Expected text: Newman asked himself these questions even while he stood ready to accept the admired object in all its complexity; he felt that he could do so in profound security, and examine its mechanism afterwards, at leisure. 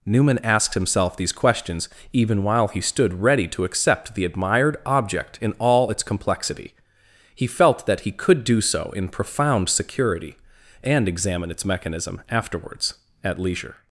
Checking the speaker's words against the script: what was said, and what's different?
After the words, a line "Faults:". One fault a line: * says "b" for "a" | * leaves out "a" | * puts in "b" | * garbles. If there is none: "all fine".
Newman asked himself these questions even while he stood ready to accept the admired object in all its complexity; he felt that he could do so in profound security, and examine its mechanism afterwards, at leisure.
Faults:
all fine